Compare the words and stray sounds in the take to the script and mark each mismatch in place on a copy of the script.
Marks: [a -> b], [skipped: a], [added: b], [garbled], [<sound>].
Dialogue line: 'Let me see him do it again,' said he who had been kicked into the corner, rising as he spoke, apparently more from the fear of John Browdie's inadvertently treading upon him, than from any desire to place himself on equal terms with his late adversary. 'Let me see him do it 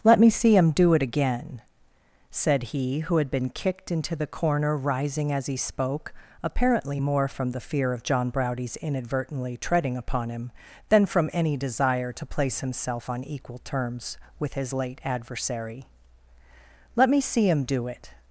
'Let me see him do it again,' said he who had been kicked into the corner, rising as he spoke, apparently more from the fear of John Browdie's inadvertently treading upon him, than from any desire to place himself on equal terms with his late adversary. 'Let me see him do it